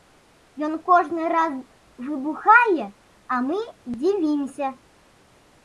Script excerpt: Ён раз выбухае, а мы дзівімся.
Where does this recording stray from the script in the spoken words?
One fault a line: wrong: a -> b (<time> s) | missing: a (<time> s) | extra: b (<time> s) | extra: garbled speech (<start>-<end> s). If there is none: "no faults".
extra: кожны (0.9 s)